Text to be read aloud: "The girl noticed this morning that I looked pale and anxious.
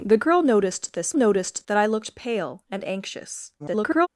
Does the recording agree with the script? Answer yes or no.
no